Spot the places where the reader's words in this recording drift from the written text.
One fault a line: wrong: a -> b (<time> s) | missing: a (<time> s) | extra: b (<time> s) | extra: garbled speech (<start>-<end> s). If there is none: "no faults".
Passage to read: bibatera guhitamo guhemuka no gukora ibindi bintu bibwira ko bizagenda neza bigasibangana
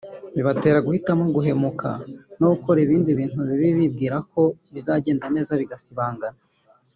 extra: bibi (3.5 s)